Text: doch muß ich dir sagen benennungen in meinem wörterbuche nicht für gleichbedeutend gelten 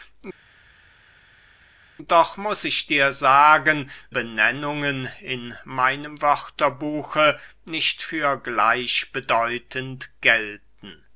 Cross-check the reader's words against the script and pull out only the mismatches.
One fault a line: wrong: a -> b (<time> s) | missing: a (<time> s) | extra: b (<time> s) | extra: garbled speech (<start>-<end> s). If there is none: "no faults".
no faults